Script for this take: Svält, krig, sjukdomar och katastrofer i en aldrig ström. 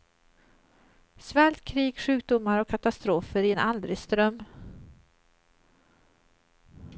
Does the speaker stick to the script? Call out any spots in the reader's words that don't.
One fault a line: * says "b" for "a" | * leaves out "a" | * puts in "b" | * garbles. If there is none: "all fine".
all fine